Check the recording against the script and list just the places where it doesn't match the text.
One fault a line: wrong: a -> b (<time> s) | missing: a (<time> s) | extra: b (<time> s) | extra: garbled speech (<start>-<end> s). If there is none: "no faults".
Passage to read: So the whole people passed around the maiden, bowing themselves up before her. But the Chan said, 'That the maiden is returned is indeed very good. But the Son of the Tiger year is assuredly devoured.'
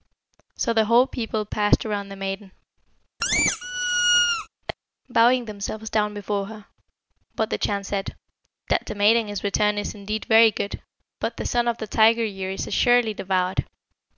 wrong: up -> down (5.9 s)